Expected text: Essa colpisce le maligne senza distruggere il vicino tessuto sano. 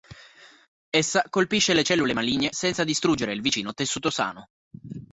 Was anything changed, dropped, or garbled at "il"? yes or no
no